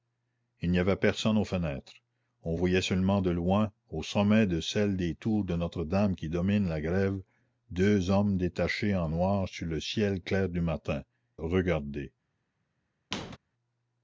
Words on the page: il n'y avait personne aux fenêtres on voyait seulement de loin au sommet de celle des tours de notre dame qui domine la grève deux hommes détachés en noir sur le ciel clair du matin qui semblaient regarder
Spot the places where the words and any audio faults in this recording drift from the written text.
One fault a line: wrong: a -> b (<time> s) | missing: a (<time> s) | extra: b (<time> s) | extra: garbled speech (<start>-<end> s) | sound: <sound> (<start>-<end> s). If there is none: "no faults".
missing: qui semblaient (11.0 s)
sound: squeak (13.1-13.4 s)